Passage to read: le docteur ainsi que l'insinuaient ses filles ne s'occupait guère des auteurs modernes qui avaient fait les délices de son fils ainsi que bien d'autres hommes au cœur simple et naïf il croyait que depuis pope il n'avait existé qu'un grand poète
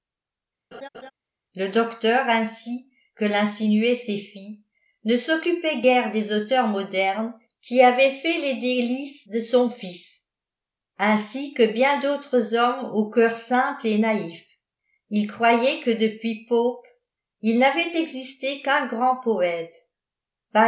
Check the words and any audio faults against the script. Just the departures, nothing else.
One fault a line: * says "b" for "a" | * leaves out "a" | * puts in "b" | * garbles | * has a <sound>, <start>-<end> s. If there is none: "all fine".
* has a laugh, 0.7-1.1 s